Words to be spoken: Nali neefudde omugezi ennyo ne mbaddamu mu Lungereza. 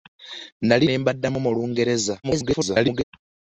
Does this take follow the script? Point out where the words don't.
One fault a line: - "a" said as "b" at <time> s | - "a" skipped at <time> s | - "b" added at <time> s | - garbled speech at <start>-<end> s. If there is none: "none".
- "neefudde omugezi ennyo" skipped at 0.9 s
- garbled speech at 2.2-3.0 s